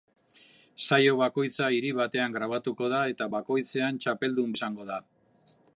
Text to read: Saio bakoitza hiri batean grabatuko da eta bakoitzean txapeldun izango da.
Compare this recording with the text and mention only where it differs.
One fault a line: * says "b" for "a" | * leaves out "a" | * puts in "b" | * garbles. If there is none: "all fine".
all fine